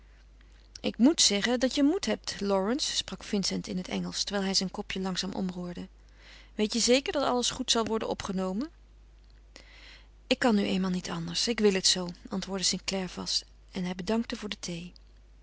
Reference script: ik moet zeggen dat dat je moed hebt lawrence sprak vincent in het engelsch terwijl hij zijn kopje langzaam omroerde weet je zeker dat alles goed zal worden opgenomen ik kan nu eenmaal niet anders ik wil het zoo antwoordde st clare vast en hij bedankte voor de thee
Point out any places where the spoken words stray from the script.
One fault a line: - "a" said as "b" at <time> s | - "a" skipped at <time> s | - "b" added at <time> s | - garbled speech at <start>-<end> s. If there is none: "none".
- "dat" skipped at 1.8 s